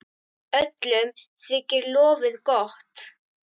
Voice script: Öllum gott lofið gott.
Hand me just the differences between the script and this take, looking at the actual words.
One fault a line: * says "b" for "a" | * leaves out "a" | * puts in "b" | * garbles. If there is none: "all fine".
* says "þykir" for "gott"